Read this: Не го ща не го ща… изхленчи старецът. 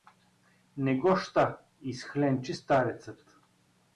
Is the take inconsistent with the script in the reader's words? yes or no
yes